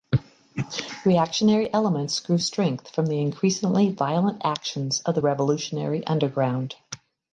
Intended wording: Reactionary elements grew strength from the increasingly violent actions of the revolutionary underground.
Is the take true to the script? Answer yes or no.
yes